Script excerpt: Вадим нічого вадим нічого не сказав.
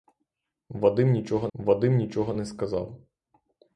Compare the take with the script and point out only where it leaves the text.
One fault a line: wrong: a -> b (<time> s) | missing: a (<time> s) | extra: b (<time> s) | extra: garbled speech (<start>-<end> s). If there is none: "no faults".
no faults